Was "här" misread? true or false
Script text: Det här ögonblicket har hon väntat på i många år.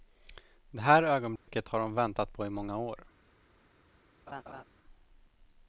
false